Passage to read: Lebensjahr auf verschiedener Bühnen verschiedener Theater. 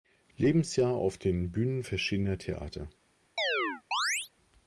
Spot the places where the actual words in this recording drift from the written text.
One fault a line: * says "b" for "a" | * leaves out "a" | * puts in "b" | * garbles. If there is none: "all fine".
* says "den" for "verschiedener"